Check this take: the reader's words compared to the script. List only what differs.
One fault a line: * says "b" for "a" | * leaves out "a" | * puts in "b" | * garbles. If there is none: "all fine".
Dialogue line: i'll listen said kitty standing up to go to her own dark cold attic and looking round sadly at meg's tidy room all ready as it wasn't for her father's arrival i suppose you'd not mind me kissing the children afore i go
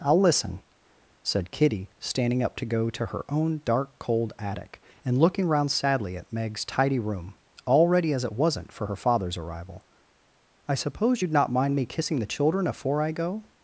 all fine